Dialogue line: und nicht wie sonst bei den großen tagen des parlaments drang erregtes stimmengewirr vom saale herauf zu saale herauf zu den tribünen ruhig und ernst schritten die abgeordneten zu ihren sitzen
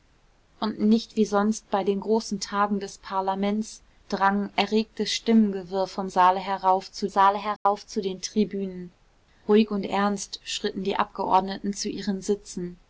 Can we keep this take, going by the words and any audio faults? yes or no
no